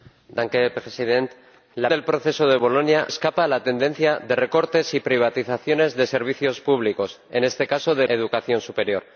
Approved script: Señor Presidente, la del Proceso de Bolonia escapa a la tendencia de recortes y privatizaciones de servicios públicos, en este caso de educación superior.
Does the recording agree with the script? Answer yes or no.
yes